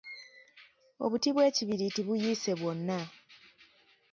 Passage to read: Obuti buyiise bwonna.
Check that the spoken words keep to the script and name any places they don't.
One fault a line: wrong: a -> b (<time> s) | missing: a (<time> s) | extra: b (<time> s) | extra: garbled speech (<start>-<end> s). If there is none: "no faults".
extra: bw'ekibiriiti (1.3 s)